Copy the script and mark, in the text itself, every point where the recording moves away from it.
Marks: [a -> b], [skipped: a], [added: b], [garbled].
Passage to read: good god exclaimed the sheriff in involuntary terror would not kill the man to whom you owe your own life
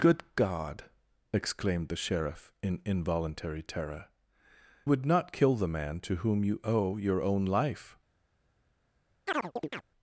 good god exclaimed the sheriff in involuntary terror would not kill the man to whom you owe your own life